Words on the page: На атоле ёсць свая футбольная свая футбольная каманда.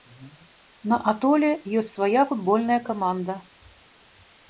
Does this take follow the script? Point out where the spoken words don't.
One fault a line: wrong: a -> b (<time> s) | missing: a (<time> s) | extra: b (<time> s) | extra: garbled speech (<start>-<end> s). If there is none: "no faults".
missing: свая футбольная (2.8 s)